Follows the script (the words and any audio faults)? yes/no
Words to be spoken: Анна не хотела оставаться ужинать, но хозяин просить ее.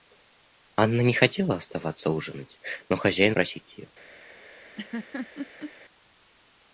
no